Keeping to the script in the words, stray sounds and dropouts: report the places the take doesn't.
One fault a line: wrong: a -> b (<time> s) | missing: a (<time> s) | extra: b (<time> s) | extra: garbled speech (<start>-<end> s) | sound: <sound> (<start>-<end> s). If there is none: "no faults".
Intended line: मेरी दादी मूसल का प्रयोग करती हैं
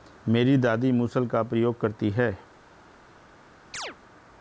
sound: chirp (3.7-4.0 s)